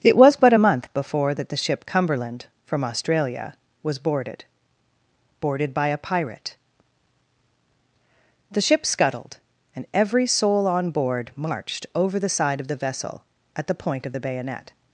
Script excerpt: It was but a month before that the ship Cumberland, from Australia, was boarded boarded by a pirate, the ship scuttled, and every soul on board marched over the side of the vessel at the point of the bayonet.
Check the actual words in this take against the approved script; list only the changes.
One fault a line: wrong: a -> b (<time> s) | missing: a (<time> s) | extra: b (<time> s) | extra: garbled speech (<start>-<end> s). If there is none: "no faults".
no faults